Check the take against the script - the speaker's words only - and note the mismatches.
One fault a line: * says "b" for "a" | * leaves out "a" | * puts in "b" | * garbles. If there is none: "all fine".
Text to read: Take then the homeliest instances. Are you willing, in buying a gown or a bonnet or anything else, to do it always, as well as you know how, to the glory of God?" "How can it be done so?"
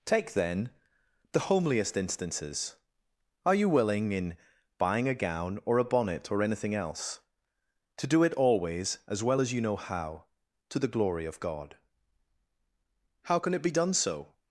all fine